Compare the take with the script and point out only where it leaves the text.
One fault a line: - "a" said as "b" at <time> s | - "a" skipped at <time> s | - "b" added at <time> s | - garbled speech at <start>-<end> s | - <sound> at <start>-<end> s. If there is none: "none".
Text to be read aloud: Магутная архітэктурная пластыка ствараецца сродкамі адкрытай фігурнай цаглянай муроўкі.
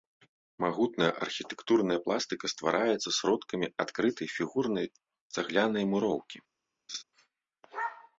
- laugh at 6.9-7.0 s